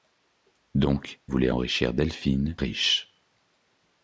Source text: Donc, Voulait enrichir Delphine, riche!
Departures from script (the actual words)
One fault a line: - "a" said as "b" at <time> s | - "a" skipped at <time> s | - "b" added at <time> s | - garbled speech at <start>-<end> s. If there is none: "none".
none